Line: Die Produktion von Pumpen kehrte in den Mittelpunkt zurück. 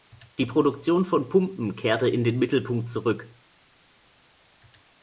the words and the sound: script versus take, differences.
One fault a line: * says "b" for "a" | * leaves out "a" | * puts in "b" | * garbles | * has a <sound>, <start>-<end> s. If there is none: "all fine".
all fine